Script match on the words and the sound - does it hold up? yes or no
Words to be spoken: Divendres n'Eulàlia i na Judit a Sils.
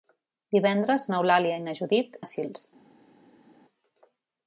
yes